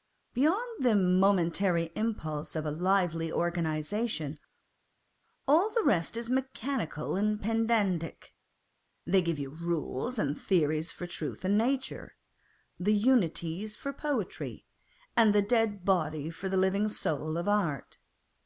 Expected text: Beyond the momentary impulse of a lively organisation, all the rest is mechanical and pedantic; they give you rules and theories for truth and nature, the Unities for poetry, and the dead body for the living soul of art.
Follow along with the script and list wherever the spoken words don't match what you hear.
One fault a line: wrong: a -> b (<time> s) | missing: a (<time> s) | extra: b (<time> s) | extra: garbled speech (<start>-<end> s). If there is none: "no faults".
no faults